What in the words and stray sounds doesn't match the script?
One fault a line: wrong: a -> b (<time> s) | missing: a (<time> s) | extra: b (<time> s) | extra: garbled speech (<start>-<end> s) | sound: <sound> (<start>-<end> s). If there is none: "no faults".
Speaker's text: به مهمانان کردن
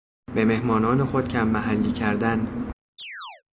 extra: خود کم محلی (1.1 s)
sound: chirp (3.0-3.4 s)